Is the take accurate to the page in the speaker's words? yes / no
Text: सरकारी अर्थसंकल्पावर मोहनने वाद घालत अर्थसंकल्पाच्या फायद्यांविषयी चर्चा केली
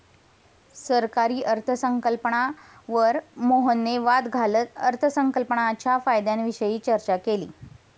yes